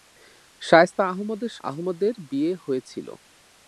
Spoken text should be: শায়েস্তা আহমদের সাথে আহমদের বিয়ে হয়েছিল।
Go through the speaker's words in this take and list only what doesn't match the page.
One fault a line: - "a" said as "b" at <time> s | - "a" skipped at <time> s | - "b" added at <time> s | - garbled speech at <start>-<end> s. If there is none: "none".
- "সাথে" skipped at 1.5 s